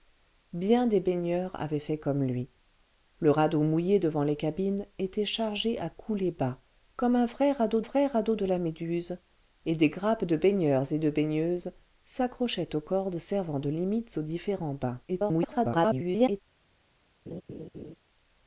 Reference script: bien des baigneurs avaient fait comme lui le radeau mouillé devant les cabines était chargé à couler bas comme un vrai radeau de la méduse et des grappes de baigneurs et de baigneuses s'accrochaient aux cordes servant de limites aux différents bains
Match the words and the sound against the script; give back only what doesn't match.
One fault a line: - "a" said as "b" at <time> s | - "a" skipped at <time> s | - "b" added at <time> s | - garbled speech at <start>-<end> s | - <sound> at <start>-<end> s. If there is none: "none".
- "vrai radeau" added at 7.8 s
- garbled speech at 15.1-16.4 s
- laugh at 17.3-18.0 s